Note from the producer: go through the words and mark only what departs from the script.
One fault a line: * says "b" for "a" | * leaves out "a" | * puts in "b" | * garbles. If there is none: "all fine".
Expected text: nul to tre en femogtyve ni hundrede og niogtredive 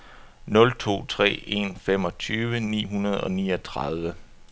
all fine